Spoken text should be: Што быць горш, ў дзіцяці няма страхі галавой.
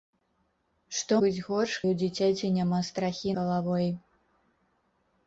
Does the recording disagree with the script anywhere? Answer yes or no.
no